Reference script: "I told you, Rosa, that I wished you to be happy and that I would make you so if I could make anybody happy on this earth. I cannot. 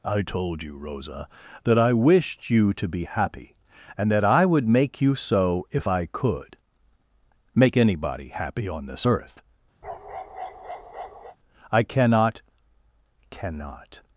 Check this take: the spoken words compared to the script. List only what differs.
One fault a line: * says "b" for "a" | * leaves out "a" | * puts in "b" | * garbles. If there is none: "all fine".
* puts in "cannot"